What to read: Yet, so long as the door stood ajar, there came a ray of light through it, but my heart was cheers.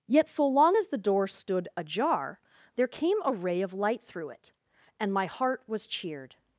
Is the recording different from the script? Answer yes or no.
yes